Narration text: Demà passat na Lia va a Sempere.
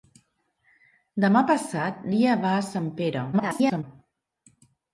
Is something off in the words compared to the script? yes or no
yes